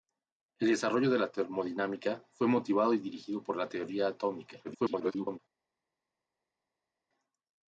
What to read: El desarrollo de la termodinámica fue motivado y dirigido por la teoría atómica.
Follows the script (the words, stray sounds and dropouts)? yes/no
no